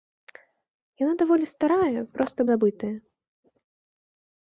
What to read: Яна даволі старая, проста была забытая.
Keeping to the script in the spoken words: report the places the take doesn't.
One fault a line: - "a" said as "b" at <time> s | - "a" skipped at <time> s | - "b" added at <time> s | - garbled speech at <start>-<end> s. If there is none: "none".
- "была" skipped at 2.4 s